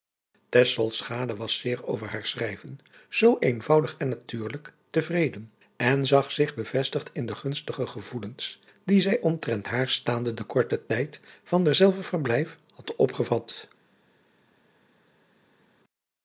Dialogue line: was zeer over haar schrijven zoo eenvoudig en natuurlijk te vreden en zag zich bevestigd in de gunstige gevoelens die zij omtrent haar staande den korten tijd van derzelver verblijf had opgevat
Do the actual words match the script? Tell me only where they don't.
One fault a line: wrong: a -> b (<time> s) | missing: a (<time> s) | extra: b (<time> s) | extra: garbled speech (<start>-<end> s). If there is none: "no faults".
no faults